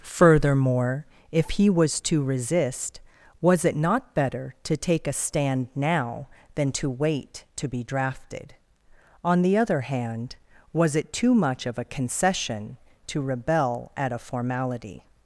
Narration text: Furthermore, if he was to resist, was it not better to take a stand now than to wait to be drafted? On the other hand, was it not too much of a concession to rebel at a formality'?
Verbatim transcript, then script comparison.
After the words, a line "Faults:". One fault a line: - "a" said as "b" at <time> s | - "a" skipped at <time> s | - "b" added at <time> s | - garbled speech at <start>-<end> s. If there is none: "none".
Furthermore, if he was to resist, was it not better to take a stand now than to wait to be drafted? On the other hand, was it too much of a concession to rebel at a formality'?
Faults:
- "not" skipped at 11.1 s